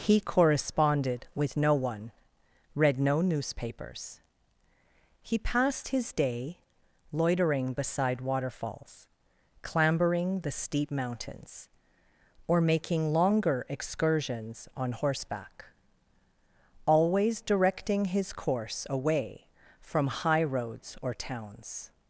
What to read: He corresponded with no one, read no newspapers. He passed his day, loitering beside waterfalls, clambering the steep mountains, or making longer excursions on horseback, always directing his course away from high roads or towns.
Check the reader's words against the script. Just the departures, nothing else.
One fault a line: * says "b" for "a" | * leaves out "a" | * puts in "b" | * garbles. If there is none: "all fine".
all fine